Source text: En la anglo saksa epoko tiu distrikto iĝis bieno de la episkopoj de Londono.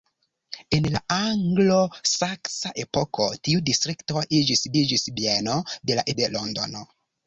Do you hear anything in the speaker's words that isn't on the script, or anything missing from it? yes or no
yes